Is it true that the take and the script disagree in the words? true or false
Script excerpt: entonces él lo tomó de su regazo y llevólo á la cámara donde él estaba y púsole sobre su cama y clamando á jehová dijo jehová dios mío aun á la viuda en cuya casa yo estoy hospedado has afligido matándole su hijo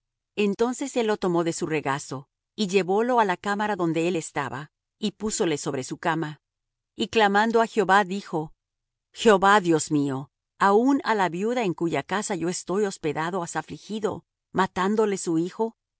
false